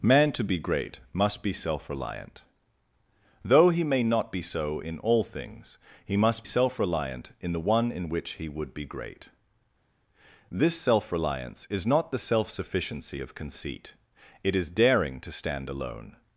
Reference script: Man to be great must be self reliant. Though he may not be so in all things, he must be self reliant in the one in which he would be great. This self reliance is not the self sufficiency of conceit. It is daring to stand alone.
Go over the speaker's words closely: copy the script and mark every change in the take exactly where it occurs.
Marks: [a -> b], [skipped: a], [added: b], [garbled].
Man to be great must be self reliant. Though he may not be so in all things, he must [skipped: be] self reliant in the one in which he would be great. This self reliance is not the self sufficiency of conceit. It is daring to stand alone.